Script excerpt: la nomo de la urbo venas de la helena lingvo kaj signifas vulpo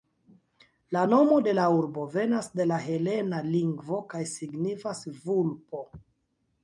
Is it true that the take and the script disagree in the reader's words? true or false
false